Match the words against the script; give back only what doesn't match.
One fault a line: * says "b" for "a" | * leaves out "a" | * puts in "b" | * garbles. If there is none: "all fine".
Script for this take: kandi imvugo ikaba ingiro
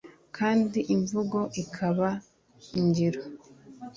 all fine